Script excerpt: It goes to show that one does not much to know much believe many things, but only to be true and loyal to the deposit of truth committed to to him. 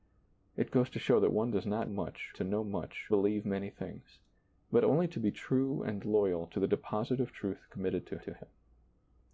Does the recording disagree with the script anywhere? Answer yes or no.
no